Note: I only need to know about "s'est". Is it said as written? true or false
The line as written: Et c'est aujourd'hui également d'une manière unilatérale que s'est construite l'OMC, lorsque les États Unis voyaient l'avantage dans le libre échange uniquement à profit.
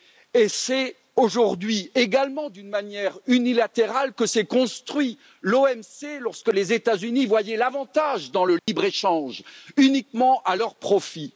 true